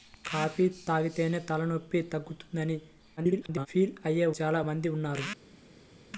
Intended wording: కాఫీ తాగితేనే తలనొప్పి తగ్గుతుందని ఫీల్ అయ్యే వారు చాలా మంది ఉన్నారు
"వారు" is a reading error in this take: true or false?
true